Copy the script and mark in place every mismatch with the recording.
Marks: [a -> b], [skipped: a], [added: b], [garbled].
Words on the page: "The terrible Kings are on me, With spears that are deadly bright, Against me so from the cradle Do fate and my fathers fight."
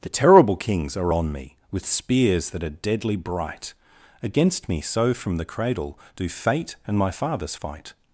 "The terrible Kings are on me, With spears that are deadly bright, Against me so from the cradle Do fate and my fathers fight."